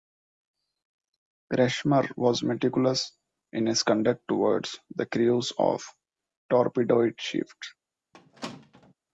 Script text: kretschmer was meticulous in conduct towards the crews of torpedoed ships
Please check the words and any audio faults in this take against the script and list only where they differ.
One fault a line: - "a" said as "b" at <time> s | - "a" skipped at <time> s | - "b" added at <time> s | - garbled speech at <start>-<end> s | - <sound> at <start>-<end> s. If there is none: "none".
- "his" added at 3.7 s
- squeak at 8.1-8.9 s